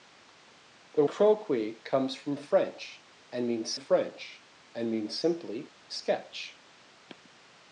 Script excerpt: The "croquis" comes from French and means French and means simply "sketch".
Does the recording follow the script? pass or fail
pass